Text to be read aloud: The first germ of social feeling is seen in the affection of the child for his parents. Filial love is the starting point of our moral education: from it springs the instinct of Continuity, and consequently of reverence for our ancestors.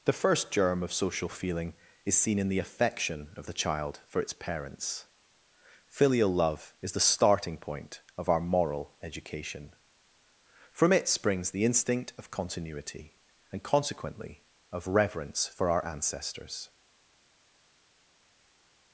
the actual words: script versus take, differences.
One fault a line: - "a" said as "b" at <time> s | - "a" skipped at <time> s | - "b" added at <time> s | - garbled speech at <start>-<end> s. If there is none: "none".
- "his" said as "its" at 4.2 s